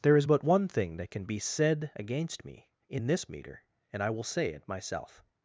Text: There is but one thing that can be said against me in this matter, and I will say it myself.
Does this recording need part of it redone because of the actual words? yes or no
yes